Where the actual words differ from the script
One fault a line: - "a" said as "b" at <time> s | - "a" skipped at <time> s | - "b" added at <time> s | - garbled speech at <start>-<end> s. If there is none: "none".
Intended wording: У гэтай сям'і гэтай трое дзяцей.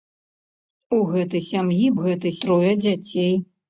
none